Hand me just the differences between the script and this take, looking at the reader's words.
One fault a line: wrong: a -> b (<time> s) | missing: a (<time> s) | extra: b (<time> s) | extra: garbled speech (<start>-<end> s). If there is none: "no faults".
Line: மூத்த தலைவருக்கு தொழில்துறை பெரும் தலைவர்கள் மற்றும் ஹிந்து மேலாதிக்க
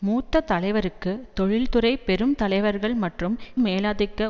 missing: ஹிந்து (3.3 s)